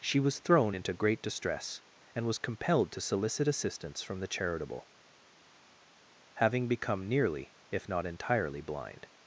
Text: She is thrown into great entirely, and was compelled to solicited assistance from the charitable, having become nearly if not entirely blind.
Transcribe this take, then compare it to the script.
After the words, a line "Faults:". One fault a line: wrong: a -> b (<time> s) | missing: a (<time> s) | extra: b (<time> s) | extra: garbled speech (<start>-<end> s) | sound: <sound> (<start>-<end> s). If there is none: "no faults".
She was thrown into great distress, and was compelled to solicit assistance from the charitable, having become nearly if not entirely blind.
Faults:
wrong: is -> was (0.2 s)
wrong: entirely -> distress (1.2 s)
wrong: solicited -> solicit (3.0 s)